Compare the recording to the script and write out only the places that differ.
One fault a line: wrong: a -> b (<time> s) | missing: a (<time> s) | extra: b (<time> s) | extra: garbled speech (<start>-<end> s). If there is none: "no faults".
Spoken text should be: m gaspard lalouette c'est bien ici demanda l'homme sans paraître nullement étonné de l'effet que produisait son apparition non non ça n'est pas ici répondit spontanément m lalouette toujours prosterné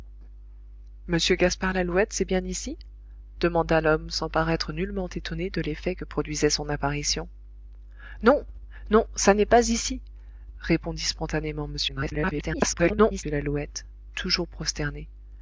extra: garbled speech (11.9-13.2 s)